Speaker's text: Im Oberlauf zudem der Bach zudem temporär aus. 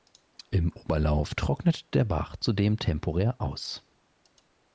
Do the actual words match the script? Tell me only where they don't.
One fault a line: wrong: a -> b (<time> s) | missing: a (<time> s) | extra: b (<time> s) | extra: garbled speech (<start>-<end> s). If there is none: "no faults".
wrong: zudem -> trocknet (1.4 s)